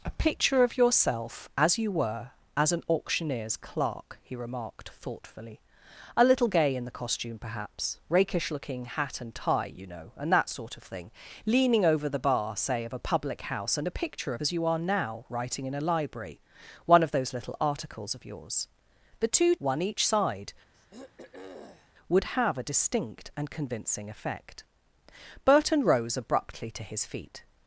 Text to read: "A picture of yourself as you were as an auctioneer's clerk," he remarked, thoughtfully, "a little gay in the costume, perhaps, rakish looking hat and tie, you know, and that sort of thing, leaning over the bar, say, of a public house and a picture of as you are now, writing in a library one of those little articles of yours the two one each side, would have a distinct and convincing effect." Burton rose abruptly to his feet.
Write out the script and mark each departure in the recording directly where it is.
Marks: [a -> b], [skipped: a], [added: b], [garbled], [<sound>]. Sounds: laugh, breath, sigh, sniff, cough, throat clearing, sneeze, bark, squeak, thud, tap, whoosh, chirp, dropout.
"A picture of yourself as you were as an auctioneer's clerk," he remarked, thoughtfully, "a little gay in the costume, perhaps, rakish looking hat and tie, you know, and that sort of thing, leaning over the bar, say, of a public house and a picture of as you are now, writing in a library one of those little articles of yours the two one each side, [throat clearing] would have a distinct and convincing effect." Burton rose abruptly to his feet.